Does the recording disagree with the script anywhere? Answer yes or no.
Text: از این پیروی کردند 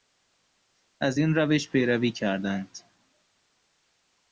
yes